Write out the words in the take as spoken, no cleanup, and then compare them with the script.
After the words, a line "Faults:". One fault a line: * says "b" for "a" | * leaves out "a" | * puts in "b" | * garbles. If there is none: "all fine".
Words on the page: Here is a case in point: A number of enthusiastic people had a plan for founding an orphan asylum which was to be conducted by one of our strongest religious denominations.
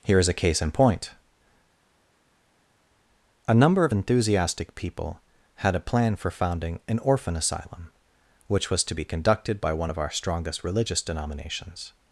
Here is a case in point: A number of enthusiastic people had a plan for founding an orphan asylum which was to be conducted by one of our strongest religious denominations.
Faults:
all fine